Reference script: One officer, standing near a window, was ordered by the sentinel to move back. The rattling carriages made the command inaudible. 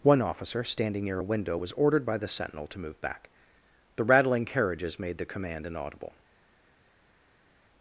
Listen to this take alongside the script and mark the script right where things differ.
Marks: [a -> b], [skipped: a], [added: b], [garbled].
One officer, standing near a window, was ordered by the sentinel to move back. The rattling carriages made the command inaudible.